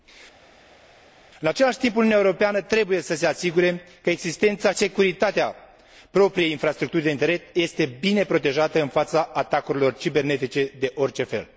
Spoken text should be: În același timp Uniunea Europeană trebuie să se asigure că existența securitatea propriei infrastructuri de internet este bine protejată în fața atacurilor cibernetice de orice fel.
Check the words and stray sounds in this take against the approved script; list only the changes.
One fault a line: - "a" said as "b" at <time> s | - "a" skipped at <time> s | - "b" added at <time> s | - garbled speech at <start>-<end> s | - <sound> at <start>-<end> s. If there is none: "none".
none